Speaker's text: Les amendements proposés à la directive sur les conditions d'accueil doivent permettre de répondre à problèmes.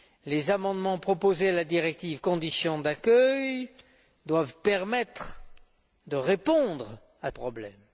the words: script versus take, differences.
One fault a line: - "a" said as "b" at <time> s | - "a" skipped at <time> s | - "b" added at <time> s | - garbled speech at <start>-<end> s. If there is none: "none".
none